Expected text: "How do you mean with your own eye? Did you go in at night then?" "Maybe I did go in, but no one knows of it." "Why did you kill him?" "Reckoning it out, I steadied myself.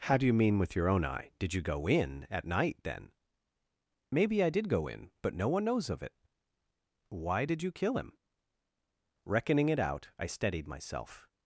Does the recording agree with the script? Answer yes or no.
yes